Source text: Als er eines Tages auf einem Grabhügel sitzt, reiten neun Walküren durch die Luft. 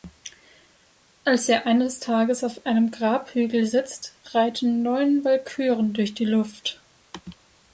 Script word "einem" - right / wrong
right